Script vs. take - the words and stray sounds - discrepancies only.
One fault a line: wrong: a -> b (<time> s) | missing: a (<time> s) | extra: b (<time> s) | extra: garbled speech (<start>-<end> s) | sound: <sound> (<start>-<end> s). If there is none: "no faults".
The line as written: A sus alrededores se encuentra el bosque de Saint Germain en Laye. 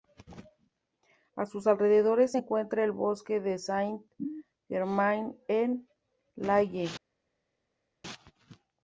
no faults